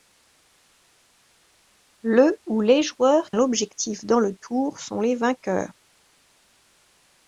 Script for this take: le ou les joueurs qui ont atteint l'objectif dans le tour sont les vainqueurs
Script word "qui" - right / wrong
wrong